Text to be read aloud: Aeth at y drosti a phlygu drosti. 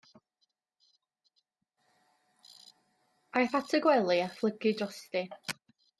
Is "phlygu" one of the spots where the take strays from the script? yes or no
no